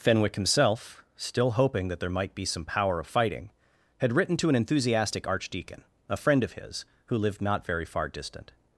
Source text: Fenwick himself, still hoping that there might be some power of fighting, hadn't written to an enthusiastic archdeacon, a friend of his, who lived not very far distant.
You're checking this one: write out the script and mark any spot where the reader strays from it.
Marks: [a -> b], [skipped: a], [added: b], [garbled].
Fenwick himself, still hoping that there might be some power of fighting, [hadn't -> had] written to an enthusiastic archdeacon, a friend of his, who lived not very far distant.